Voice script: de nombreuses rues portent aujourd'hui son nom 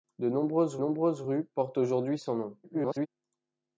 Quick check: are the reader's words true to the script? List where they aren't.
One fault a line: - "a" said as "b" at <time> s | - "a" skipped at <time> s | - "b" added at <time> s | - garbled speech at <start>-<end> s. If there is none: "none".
- "nombreuses" added at 0.8 s
- garbled speech at 2.6-3.1 s